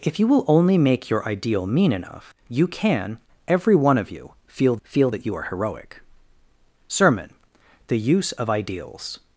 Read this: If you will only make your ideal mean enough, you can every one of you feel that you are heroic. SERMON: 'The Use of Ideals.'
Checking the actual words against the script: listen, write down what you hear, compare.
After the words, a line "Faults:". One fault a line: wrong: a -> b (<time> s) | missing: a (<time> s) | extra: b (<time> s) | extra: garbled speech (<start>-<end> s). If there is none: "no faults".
If you will only make your ideal mean enough, you can every one of you feel feel that you are heroic. SERMON: 'The Use of Ideals.'
Faults:
extra: feel (4.8 s)